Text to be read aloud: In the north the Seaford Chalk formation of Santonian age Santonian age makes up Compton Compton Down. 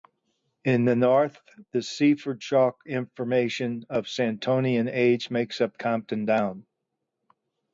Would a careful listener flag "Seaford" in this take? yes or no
no